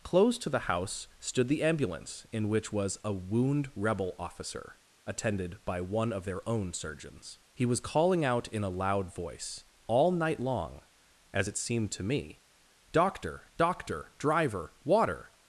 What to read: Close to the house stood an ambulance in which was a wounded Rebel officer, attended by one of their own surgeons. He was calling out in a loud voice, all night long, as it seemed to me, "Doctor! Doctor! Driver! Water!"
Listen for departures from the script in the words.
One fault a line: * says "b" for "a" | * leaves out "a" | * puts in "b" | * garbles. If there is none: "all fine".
* says "the" for "an"
* says "wound" for "wounded"